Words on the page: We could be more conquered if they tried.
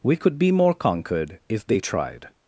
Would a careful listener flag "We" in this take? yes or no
no